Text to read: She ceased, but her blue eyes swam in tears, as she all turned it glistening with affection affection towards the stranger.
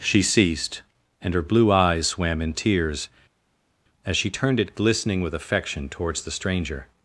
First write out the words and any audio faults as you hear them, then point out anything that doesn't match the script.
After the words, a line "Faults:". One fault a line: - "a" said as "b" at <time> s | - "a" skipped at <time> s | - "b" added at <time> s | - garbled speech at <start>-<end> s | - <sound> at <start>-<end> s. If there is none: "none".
She ceased, and her blue eyes swam in tears, as she turned it glistening with affection towards the stranger.
Faults:
- "but" said as "and" at 1.2 s
- "all" skipped at 4.3 s
- "affection" skipped at 5.9 s